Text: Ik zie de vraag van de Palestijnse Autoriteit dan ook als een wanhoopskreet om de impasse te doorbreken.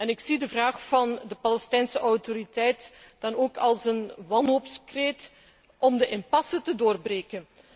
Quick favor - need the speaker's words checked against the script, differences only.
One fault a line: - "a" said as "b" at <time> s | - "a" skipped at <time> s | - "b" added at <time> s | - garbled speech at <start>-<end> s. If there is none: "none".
none